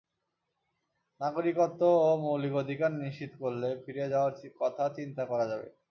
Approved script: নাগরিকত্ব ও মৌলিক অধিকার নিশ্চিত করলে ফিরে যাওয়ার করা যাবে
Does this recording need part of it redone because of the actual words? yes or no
yes